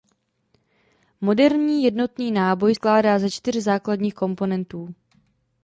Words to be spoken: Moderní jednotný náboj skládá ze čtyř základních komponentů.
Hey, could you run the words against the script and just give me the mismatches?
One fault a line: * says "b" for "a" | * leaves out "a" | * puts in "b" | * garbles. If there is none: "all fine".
all fine